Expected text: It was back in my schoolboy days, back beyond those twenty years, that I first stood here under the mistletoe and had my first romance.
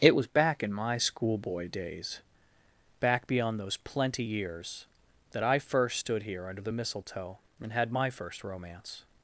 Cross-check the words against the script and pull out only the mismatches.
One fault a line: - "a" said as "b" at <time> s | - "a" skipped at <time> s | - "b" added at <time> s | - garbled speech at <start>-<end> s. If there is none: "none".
- "twenty" said as "plenty" at 3.8 s